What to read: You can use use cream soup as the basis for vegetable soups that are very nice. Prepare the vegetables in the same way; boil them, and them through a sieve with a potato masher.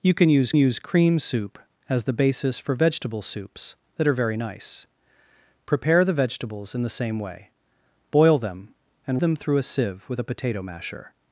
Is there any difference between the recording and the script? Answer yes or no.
no